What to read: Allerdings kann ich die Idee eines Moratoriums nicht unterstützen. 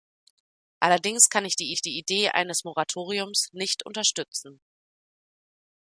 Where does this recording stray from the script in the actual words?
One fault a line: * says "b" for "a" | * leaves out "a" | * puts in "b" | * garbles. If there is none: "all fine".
* puts in "ich die"